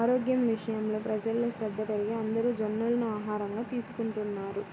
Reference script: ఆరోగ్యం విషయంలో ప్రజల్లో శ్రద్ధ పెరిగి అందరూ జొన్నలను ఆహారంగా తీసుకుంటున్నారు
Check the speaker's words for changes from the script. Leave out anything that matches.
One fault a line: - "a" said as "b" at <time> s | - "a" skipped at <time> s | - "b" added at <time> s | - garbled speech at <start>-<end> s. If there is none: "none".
none